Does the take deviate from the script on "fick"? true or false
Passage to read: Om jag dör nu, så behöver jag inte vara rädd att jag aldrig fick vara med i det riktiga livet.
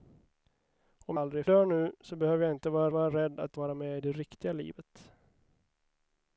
true